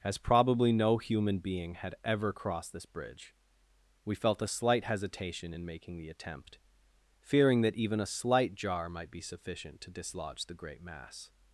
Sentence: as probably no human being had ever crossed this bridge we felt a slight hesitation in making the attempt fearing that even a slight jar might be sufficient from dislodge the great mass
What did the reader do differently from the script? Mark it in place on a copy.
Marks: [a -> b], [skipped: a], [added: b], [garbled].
as probably no human being had ever crossed this bridge we felt a slight hesitation in making the attempt fearing that even a slight jar might be sufficient [from -> to] dislodge the great mass